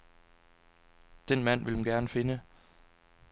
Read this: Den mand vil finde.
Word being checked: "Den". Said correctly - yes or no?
yes